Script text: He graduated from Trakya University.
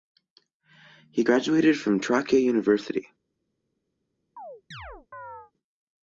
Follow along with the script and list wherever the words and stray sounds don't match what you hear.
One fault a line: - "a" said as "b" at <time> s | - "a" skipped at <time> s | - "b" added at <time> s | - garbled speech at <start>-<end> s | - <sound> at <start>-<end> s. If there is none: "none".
- chirp at 4.4-5.5 s